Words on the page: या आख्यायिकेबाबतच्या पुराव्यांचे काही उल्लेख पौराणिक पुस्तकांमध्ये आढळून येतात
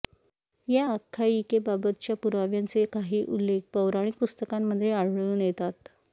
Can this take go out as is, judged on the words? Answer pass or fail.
pass